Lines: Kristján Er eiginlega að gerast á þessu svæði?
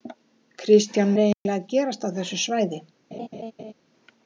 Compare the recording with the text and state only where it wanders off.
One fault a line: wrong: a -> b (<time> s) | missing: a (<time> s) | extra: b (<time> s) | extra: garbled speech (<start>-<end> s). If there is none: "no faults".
no faults